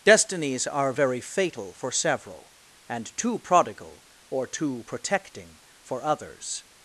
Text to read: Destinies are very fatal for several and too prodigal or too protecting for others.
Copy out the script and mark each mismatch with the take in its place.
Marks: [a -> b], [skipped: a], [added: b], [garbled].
Destinies are very fatal for several and too prodigal or too protecting for others.